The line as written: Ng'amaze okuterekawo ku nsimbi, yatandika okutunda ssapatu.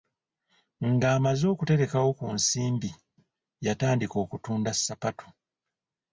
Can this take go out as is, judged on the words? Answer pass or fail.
pass